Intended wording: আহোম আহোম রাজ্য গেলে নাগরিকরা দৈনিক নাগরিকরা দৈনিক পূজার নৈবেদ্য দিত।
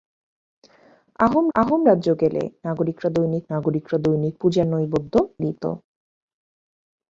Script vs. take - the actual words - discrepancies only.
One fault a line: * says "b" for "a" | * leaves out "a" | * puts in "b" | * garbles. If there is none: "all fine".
all fine